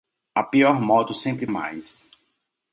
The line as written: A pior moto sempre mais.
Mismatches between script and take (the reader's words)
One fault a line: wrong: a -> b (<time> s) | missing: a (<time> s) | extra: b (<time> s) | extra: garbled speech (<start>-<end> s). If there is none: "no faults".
no faults